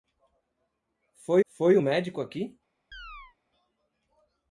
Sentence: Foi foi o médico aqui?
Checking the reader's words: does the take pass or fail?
pass